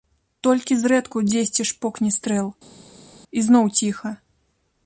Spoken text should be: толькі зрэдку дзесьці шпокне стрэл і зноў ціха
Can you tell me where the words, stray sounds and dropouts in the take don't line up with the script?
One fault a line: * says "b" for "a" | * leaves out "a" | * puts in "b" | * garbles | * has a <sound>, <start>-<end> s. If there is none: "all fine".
all fine